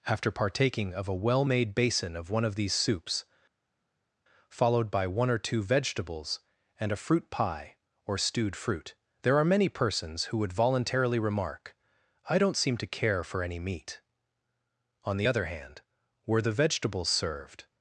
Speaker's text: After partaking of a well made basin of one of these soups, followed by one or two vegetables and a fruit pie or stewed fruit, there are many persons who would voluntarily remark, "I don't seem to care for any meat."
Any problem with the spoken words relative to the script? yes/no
yes